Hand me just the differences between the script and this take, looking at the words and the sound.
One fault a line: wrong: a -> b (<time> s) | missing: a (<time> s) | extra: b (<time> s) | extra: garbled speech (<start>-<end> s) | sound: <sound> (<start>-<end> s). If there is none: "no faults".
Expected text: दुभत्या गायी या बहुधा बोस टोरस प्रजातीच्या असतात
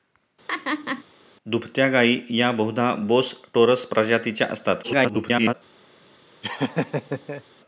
sound: laugh (0.5-1.0 s)
extra: garbled speech (4.8-5.5 s)
sound: laugh (6.4-7.4 s)